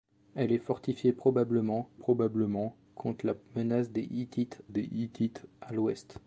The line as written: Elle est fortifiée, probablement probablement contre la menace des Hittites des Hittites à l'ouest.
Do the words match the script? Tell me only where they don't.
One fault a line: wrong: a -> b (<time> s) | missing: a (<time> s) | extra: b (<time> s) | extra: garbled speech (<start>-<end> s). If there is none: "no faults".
no faults